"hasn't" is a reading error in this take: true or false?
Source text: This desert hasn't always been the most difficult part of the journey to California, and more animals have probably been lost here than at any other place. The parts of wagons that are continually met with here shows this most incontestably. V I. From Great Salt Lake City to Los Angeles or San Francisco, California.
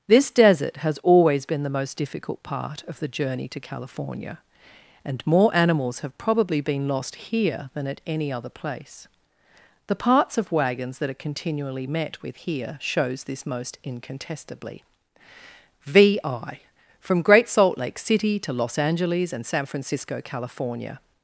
true